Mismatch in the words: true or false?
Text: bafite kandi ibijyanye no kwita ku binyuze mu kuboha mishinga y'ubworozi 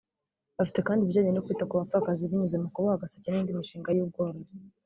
true